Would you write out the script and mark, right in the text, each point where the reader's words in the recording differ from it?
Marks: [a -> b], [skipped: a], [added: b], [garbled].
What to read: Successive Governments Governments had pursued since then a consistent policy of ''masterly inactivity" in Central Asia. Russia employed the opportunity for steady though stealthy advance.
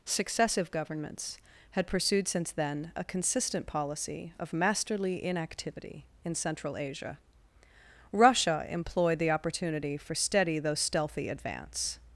Successive Governments [skipped: Governments] had pursued since then a consistent policy of ''masterly inactivity" in Central Asia. Russia employed the opportunity for steady though stealthy advance.